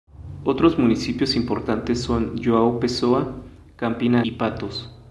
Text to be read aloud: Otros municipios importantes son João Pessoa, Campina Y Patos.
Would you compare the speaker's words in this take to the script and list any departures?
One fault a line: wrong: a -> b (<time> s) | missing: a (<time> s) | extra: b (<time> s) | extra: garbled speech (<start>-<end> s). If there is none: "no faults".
no faults